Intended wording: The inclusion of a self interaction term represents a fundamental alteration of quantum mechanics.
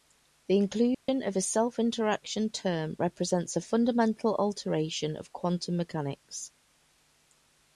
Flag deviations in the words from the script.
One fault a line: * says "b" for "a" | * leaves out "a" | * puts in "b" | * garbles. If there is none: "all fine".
all fine